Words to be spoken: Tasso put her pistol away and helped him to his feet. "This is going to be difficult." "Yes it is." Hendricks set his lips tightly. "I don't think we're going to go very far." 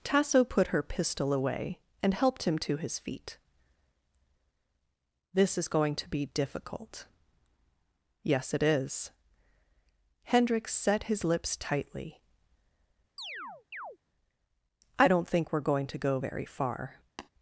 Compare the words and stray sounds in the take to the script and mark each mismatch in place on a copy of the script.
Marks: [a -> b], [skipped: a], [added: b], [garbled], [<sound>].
Tasso put her pistol away and helped him to his feet. "This is going to be difficult." "Yes it is." Hendricks set his lips tightly. [chirp] "I don't think we're going to go very far." [tap]